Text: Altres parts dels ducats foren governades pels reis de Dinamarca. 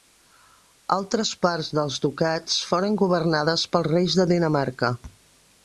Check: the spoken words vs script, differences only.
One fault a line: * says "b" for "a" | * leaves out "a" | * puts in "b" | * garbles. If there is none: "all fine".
all fine